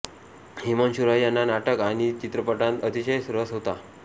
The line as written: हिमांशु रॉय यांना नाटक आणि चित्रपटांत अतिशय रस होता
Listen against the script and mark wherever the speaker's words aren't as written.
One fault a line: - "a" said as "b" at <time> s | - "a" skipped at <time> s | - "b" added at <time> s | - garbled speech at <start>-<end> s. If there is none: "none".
none